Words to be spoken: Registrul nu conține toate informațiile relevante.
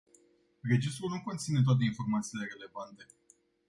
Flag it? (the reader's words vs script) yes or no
no